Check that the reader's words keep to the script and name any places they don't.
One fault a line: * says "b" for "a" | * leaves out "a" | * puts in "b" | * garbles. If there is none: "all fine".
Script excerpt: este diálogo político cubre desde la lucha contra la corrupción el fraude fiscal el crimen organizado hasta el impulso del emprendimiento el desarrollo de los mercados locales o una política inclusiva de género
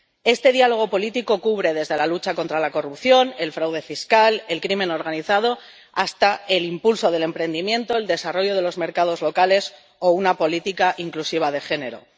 all fine